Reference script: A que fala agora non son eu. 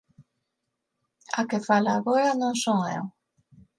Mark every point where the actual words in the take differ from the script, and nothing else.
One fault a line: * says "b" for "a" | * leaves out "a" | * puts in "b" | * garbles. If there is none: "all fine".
all fine